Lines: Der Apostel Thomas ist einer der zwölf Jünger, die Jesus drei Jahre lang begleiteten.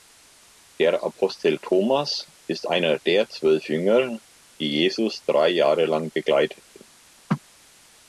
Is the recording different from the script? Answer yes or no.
no